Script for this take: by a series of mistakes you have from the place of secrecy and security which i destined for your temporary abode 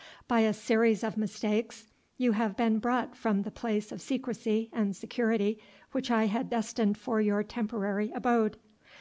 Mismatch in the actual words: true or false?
true